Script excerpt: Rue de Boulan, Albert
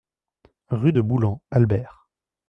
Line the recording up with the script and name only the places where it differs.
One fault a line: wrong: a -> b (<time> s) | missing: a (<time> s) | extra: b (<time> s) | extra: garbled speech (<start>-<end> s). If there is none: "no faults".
no faults